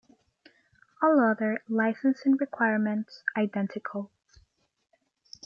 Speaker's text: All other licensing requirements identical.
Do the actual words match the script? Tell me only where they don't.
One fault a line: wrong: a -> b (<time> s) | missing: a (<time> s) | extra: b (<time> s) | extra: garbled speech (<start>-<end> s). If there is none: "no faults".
no faults